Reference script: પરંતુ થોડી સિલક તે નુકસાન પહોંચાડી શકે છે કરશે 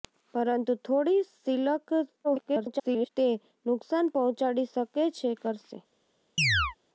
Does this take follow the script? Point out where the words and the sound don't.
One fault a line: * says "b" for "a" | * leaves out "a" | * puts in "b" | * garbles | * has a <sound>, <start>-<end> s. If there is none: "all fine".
* garbles
* has a chirp, 6.4-6.8 s